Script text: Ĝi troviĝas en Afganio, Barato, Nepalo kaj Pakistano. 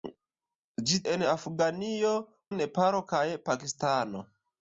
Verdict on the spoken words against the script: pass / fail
fail